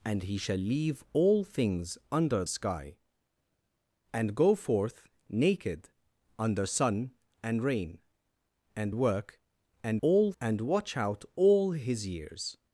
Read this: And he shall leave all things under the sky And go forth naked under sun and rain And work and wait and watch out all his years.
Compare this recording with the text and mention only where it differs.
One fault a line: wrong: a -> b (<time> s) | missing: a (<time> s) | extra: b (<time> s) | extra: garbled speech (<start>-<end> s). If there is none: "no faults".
missing: the (2.4 s)
wrong: wait -> all (10.0 s)